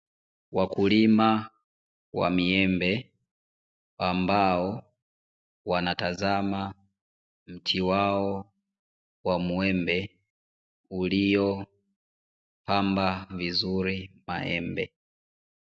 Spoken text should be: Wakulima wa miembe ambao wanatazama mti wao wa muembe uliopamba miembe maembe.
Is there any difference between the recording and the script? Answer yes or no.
yes